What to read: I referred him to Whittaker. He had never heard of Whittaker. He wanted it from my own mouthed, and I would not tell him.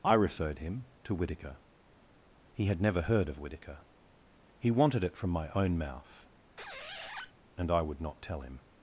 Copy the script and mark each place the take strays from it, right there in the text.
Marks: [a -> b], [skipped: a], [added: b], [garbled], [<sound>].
I referred him to Whittaker. He had never heard of Whittaker. He wanted it from my own [mouthed, -> mouth] [squeak] and I would not tell him.